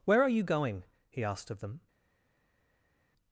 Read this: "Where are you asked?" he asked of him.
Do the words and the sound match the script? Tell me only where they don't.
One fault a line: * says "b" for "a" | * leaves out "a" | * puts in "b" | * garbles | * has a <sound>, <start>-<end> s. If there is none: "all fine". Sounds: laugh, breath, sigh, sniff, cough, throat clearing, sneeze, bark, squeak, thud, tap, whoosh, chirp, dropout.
* says "going" for "asked"
* says "them" for "him"